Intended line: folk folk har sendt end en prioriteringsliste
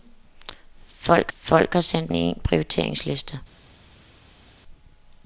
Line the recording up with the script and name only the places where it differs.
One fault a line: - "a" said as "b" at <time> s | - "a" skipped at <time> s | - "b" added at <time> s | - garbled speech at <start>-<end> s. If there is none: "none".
none